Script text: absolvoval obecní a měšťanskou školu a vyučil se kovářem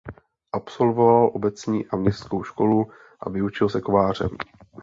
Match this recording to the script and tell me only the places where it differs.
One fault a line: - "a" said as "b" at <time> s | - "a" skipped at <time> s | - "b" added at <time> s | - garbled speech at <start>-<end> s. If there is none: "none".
none